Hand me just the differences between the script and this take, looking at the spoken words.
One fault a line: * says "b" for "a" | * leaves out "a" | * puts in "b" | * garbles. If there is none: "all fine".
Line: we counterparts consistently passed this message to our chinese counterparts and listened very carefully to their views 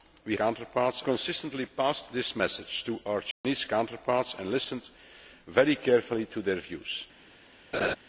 all fine